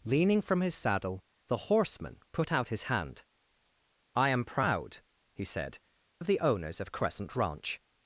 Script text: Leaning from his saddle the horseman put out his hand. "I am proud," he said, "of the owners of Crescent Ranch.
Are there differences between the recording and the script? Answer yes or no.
no